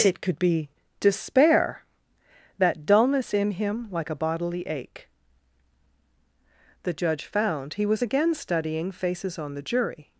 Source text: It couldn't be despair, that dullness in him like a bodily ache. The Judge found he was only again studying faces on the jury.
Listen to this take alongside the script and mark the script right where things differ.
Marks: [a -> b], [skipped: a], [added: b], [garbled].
It [couldn't -> could] be despair, that dullness in him like a bodily ache. The Judge found he was [skipped: only] again studying faces on the jury.